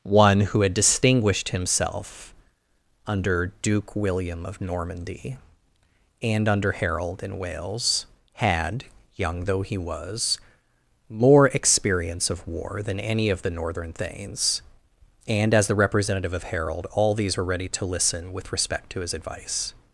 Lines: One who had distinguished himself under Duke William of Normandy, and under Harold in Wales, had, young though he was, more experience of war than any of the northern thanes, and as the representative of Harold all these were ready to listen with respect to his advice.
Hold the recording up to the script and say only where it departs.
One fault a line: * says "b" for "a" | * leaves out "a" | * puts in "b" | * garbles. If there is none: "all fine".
all fine